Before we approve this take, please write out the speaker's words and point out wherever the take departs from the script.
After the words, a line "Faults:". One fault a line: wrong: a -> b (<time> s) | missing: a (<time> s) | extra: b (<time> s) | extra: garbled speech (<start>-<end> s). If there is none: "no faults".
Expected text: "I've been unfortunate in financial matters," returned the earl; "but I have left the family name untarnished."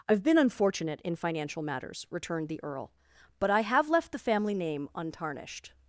"I've been unfortunate in financial matters," returned the earl; "but I have left the family name untarnished."
Faults:
no faults